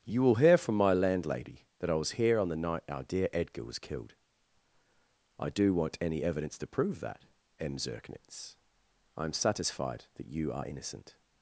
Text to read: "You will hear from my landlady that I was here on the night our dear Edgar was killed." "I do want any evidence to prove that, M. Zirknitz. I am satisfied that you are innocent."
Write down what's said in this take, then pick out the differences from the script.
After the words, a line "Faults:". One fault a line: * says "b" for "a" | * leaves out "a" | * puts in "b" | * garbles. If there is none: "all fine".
"You will hear from my landlady that I was here on the night our dear Edgar was killed." "I do want any evidence to prove that, M. Zirknitz. I am satisfied that you are innocent."
Faults:
all fine